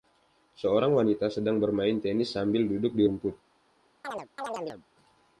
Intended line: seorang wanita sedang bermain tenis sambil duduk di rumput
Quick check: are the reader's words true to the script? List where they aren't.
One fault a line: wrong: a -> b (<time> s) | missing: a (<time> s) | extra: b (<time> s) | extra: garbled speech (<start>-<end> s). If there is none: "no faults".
no faults